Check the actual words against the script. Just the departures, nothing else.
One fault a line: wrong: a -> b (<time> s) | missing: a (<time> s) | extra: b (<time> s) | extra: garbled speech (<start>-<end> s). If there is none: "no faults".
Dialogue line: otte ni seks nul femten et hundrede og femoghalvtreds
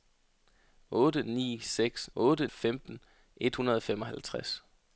wrong: nul -> otte (2.2 s)